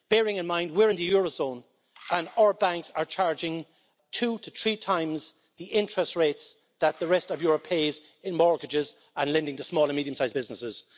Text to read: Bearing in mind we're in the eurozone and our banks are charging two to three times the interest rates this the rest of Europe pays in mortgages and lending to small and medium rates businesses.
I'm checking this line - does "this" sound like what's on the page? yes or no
no